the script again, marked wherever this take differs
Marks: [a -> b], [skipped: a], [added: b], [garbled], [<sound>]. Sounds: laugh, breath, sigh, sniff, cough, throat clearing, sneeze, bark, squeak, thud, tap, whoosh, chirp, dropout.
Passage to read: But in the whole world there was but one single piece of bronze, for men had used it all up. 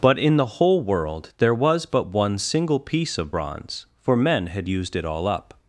But in the whole world there was but one single piece of bronze, for men had used it all up.